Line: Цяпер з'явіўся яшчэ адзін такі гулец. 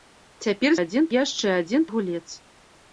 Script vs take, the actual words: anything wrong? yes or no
yes